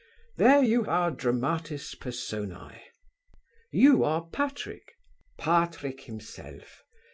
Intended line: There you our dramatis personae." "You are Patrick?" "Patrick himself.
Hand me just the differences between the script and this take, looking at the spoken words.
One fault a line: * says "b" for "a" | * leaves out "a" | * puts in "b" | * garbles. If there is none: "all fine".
all fine